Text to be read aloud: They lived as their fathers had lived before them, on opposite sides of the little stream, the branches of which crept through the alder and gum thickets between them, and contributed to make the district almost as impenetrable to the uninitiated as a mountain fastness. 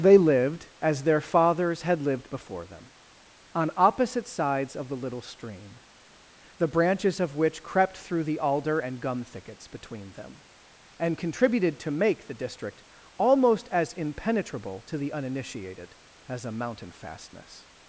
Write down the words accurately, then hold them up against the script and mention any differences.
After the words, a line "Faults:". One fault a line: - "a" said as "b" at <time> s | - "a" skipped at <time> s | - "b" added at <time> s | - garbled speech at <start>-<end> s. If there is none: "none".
They lived as their fathers had lived before them, on opposite sides of the little stream, the branches of which crept through the alder and gum thickets between them, and contributed to make the district almost as impenetrable to the uninitiated as a mountain fastness.
Faults:
none